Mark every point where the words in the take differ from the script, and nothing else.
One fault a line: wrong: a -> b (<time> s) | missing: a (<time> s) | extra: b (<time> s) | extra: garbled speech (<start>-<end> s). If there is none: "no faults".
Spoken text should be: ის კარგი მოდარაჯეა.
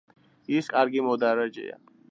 no faults